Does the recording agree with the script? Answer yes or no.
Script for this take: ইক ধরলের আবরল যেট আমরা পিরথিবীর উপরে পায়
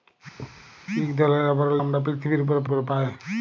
no